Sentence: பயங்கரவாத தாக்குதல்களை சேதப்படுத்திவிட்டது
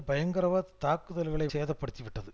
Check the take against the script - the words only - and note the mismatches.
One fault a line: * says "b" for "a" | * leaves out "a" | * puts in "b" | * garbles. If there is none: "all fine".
all fine